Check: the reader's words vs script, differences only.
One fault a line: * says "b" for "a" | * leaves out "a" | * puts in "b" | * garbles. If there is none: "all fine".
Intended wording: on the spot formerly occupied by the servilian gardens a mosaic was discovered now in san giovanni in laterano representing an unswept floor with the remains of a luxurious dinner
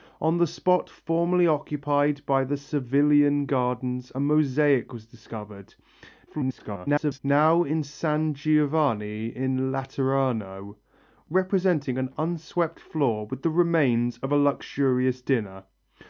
* garbles